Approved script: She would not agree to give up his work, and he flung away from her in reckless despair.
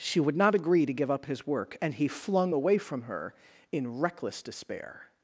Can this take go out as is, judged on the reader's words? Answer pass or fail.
pass